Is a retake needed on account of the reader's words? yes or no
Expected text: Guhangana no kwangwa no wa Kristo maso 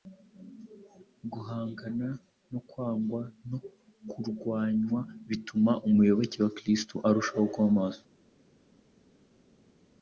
yes